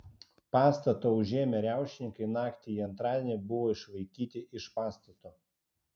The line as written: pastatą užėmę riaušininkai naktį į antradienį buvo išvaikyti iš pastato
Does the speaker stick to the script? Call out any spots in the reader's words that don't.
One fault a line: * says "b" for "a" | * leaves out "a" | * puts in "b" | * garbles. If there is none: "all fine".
all fine